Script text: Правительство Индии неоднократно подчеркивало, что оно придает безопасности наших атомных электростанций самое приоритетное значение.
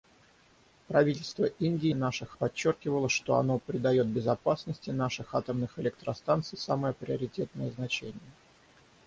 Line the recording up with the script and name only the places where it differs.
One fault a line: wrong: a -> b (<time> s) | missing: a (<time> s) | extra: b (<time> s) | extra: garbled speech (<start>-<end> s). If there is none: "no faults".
wrong: неоднократно -> наших (1.9 s)